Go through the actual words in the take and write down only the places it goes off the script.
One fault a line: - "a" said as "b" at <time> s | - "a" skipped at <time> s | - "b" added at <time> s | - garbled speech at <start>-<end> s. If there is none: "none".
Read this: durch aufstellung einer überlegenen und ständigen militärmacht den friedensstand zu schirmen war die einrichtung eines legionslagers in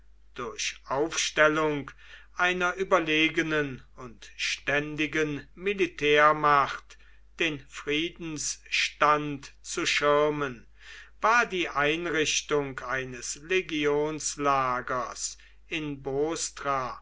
none